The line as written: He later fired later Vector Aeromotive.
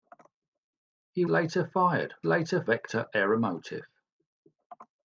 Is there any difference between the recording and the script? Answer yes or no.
no